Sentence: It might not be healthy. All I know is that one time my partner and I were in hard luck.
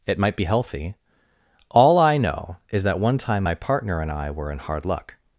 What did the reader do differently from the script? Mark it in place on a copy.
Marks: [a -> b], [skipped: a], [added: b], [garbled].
It might [skipped: not] be healthy. All I know is that one time my partner and I were in hard luck.